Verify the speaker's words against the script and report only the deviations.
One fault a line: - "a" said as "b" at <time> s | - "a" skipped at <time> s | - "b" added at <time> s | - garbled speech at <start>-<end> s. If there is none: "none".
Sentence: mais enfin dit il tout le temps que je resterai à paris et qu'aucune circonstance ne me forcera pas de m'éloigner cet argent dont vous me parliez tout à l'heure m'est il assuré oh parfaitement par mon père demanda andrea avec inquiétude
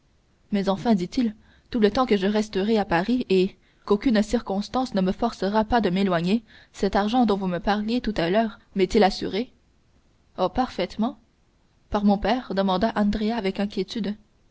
none